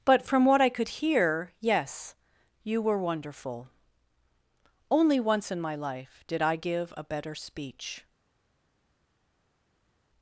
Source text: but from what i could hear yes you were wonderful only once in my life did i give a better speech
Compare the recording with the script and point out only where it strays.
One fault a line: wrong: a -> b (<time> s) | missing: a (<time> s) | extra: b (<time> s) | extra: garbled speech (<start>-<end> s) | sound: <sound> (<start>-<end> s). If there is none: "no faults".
no faults